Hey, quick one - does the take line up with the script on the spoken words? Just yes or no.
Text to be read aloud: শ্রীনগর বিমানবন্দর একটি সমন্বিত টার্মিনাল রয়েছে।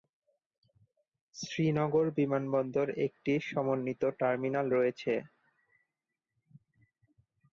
yes